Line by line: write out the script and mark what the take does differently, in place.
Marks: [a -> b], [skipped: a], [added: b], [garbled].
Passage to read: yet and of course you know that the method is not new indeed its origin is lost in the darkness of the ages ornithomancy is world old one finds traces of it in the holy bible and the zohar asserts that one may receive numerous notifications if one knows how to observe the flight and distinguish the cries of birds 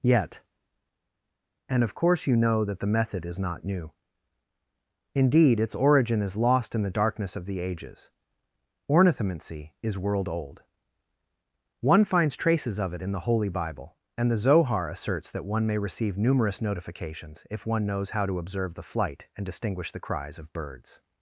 yet and of course you know that the method is not new indeed its origin is lost in the darkness of the ages ornithomancy is world old one finds traces of it in the holy bible and the zohar asserts that one may receive numerous notifications if one knows how to observe the flight and distinguish the cries of birds